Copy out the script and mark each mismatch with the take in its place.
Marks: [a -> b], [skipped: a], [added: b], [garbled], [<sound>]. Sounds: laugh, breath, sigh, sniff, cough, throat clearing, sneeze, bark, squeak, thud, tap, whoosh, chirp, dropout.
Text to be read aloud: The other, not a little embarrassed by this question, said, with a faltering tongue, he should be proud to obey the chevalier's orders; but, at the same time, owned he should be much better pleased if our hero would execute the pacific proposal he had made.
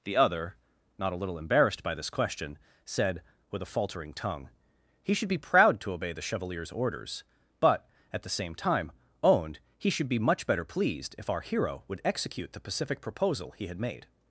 The other, not a little embarrassed by this question, said, with a faltering tongue, he should be proud to obey the chevalier's orders; but, at the same time, owned he should be much better pleased if our hero would execute the pacific proposal he had made.